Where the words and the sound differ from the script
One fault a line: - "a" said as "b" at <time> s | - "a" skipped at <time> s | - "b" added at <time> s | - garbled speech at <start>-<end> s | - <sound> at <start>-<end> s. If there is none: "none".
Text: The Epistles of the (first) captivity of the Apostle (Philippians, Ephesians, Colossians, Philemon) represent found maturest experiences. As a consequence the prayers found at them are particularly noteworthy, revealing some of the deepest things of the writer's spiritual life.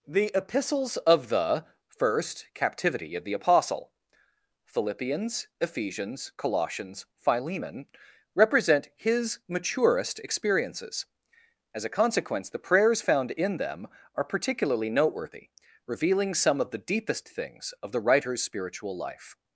- "found" said as "his" at 8.9 s
- "at" said as "in" at 13.3 s